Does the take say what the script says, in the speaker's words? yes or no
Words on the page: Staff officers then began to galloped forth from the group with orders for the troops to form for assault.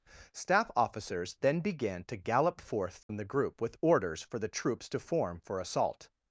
no